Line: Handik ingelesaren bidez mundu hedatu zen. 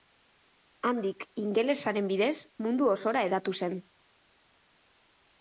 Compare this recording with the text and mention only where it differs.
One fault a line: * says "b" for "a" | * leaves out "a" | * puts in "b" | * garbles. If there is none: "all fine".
* puts in "osora"